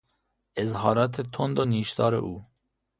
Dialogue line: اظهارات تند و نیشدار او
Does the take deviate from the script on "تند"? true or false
false